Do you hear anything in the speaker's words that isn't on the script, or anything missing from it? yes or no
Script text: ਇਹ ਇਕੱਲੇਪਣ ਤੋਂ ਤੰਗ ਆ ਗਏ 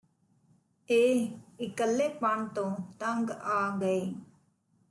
no